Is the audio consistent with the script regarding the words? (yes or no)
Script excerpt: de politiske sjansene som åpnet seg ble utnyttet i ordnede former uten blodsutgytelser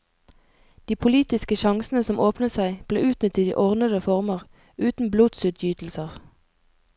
yes